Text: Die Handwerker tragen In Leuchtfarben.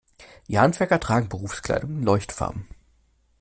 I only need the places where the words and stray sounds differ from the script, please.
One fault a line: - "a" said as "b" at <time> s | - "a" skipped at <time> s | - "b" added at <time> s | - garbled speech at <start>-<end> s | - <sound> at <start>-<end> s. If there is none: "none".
- "Berufskleidung" added at 1.3 s